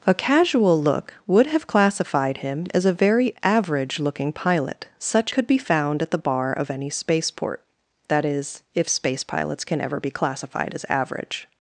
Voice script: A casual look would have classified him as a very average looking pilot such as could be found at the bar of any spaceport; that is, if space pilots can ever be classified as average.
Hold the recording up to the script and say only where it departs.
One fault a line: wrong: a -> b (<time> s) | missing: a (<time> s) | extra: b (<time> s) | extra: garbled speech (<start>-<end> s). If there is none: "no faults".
missing: as (5.3 s)